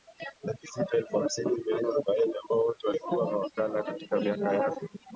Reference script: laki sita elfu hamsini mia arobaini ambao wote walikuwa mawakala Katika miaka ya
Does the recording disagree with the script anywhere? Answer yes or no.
no